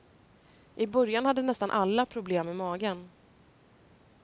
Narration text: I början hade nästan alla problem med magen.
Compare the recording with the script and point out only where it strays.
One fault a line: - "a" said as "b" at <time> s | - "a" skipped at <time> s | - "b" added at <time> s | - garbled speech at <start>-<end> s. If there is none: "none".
none